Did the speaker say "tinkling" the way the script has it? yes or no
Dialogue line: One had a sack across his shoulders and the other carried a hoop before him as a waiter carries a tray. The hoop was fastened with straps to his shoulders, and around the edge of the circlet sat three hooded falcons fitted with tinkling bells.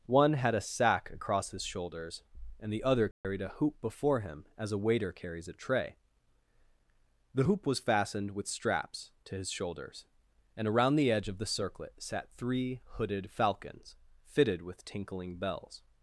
yes